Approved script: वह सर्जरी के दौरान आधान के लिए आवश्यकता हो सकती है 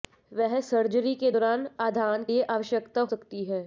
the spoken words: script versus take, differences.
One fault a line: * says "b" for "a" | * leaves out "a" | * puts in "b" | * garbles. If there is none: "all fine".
* leaves out "के"
* leaves out "हो"